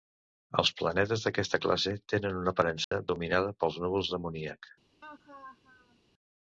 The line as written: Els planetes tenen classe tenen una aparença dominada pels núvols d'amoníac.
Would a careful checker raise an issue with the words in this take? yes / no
yes